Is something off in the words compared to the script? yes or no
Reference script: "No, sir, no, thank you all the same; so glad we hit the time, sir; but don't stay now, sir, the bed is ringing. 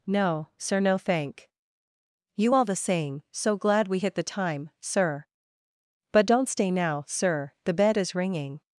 no